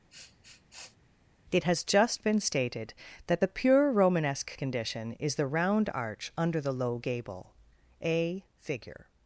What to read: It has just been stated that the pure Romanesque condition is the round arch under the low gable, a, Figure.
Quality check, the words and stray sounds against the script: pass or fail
fail